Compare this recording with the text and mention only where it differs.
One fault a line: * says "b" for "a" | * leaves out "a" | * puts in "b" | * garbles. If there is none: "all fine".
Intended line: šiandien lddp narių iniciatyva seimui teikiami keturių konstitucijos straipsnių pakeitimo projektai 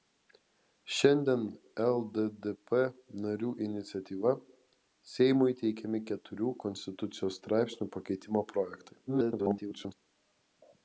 * garbles